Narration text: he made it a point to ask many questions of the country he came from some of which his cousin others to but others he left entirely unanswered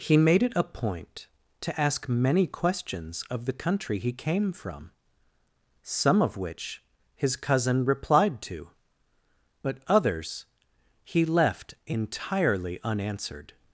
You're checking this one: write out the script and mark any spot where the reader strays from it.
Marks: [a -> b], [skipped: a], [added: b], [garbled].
he made it a point to ask many questions of the country he came from some of which his cousin [others -> replied] to but others he left entirely unanswered